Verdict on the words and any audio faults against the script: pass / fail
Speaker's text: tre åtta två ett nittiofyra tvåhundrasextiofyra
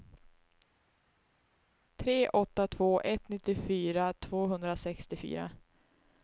pass